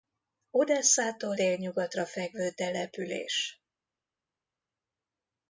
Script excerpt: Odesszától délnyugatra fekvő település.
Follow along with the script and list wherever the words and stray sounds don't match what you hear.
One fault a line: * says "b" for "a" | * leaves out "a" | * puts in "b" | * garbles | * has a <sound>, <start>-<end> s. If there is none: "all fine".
all fine